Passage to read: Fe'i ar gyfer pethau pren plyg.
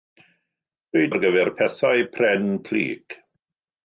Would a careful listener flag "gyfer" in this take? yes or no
no